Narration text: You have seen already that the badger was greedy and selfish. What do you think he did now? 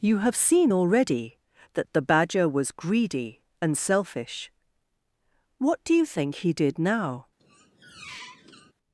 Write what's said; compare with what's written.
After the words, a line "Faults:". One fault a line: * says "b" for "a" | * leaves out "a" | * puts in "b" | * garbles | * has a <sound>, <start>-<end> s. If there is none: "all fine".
You have seen already that the badger was greedy and selfish. What do you think he did now?
Faults:
* has a squeak, 7.4-8.7 s